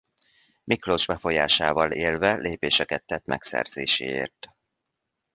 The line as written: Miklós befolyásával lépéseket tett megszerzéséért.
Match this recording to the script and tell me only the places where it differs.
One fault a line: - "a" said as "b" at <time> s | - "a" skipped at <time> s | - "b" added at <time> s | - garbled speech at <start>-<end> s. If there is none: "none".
- "élve" added at 1.9 s